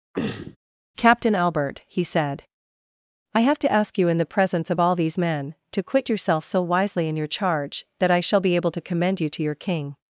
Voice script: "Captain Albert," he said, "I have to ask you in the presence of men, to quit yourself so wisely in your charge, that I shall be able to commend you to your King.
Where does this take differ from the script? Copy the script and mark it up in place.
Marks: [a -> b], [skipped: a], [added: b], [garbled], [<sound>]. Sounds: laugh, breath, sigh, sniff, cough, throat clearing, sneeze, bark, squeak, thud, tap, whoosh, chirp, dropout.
[throat clearing] "Captain Albert," he said, "I have to ask you in the presence of [added: all these] men, to quit yourself so wisely in your charge, that I shall be able to commend you to your King.